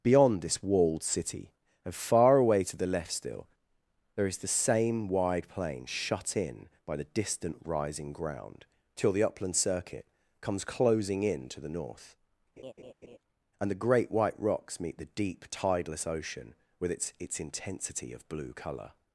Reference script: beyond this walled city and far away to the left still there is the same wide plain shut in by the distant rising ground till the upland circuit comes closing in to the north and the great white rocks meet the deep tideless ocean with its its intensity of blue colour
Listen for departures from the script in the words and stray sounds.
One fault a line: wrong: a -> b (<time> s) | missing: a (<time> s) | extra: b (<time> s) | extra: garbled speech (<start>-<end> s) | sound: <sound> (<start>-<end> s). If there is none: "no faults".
sound: laugh (12.6-13.2 s)